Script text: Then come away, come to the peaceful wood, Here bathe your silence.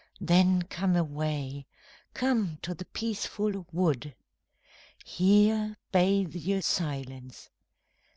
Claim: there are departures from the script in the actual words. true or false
false